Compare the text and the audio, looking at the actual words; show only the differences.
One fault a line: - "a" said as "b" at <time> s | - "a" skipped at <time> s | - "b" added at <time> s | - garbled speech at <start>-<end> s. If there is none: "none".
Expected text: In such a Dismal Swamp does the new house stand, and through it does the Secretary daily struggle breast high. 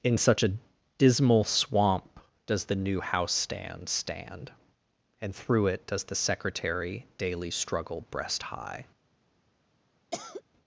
- "stand" added at 3.9 s